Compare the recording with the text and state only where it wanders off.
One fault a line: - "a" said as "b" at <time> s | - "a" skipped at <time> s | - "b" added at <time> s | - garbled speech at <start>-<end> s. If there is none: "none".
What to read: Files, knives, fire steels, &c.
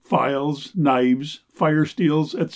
none